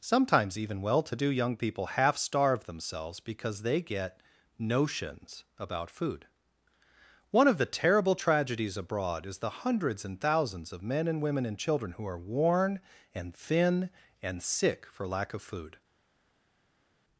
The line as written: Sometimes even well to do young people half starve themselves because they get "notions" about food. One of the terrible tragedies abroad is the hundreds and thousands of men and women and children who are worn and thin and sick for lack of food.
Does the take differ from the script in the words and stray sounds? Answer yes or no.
no